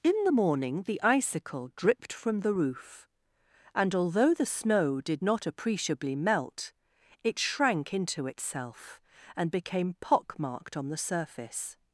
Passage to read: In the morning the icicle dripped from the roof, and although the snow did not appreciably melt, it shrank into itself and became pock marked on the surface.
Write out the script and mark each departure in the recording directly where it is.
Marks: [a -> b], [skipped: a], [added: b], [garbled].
In the morning the icicle dripped from the roof, and although the snow did not appreciably melt, it shrank into itself and became pock marked on the surface.